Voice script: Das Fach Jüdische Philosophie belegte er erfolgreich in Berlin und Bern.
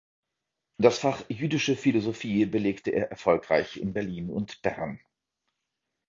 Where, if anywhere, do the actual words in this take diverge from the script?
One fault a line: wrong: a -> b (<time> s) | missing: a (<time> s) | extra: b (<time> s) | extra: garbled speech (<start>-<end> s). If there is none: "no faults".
no faults